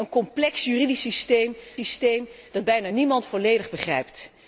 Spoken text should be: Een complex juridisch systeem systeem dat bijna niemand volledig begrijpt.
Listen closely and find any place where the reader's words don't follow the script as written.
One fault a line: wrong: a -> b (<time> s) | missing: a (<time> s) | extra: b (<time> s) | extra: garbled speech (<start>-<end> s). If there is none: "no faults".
no faults